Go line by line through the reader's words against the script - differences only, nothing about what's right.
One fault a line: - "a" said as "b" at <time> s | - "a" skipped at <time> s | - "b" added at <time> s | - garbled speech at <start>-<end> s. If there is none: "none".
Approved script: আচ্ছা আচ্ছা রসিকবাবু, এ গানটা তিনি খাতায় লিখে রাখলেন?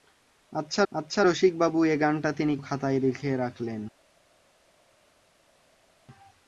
none